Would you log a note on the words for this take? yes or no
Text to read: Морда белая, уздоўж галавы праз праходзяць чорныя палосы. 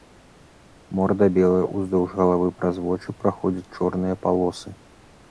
yes